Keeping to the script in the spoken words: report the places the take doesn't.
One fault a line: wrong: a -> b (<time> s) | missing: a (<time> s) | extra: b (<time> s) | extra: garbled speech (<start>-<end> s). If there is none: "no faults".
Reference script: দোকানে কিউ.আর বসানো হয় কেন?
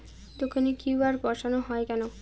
no faults